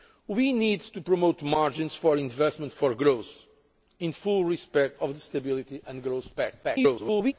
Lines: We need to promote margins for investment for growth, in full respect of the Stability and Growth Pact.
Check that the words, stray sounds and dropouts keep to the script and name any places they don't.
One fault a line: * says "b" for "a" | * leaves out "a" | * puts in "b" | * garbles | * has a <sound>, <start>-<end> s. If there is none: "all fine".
* garbles